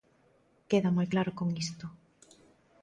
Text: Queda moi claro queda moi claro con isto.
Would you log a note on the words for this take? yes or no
yes